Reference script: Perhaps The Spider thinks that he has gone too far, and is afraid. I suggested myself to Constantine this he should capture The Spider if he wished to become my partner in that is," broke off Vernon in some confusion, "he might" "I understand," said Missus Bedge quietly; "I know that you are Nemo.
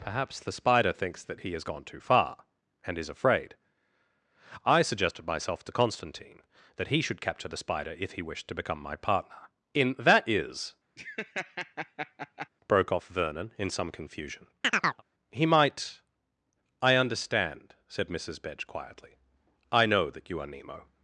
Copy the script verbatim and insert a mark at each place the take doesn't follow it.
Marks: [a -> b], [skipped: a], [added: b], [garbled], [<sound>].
Perhaps The Spider thinks that he has gone too far, and is afraid. I suggested myself to Constantine [this -> that] he should capture The Spider if he wished to become my partner in that is," [laugh] broke off Vernon in some confusion, [chirp] "he might" "I understand," said Missus Bedge quietly; "I know that you are Nemo.